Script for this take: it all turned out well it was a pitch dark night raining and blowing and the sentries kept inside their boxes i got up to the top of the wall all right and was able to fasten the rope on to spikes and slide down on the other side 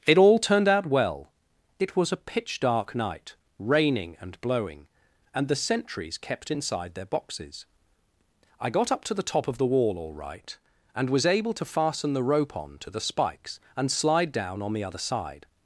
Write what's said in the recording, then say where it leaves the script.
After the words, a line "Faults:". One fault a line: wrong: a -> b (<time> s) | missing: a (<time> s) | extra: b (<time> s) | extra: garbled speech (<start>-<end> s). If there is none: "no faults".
it all turned out well it was a pitch dark night raining and blowing and the sentries kept inside their boxes i got up to the top of the wall all right and was able to fasten the rope on to the spikes and slide down on the other side
Faults:
extra: the (12.9 s)